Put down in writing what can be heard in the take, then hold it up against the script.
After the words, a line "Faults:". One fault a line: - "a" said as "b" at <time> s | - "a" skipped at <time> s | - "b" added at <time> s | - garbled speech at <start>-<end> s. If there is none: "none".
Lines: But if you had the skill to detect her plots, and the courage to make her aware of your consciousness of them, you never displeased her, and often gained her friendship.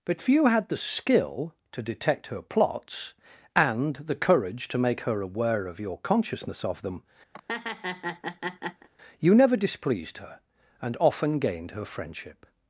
But few had the skill to detect her plots, and the courage to make her aware of your consciousness of them, you never displeased her, and often gained her friendship.
Faults:
- "if you" said as "few" at 0.2 s